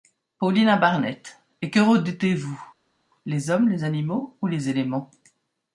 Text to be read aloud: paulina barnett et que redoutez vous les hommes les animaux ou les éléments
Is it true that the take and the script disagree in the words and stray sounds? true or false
false